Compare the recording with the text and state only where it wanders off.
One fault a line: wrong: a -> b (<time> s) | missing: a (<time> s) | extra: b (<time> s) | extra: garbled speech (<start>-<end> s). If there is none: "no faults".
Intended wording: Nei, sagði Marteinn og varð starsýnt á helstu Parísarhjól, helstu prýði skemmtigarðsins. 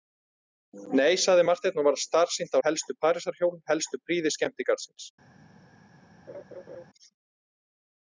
no faults